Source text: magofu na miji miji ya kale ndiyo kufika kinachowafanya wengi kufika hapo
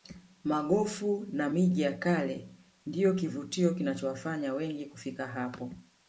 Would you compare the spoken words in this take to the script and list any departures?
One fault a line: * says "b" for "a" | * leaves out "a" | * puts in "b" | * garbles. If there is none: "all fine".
* leaves out "miji"
* says "kivutio" for "kufika"